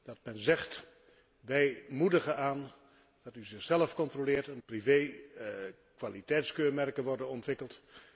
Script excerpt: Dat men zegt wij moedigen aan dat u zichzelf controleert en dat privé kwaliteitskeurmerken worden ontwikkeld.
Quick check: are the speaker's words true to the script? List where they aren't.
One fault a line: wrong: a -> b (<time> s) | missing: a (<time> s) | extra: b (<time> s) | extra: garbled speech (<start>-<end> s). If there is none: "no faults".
missing: dat (4.6 s)